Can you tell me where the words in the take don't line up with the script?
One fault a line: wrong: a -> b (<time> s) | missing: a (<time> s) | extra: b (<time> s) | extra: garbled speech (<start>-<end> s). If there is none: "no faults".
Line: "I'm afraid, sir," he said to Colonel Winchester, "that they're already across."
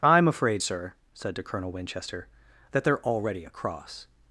missing: he (0.9 s)